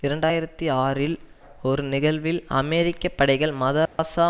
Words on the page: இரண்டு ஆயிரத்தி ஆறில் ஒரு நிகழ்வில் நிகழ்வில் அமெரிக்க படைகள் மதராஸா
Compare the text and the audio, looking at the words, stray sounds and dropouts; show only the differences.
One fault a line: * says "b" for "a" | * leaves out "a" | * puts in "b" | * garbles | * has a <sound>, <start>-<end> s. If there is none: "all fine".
* leaves out "நிகழ்வில்"
* has a dropout, 3.9-4.0 s